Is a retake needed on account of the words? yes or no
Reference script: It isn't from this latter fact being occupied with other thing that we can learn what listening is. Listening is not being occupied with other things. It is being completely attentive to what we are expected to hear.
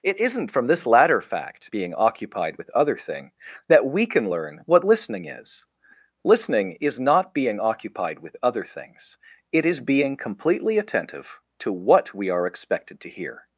no